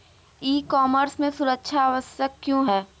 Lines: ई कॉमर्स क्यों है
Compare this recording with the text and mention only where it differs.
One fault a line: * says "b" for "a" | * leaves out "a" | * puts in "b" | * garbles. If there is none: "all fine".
* puts in "में सुरक्षा आवश्यक"